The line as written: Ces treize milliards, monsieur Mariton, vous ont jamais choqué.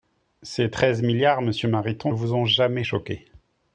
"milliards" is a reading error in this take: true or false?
false